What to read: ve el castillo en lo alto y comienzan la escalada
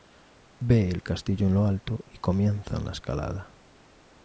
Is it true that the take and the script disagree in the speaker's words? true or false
false